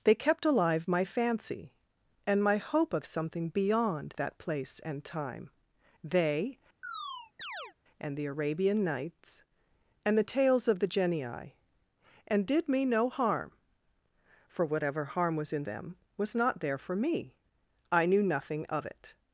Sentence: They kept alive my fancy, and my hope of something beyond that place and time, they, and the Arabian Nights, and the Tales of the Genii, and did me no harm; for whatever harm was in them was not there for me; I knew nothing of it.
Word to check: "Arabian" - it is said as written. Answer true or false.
true